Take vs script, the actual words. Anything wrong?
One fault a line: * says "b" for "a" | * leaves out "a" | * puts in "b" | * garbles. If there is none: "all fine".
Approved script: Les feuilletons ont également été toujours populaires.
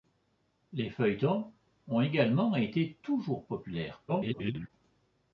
* garbles